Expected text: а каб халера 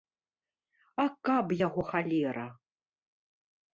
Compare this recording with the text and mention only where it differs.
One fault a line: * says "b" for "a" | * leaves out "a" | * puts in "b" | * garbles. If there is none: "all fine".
* puts in "яго"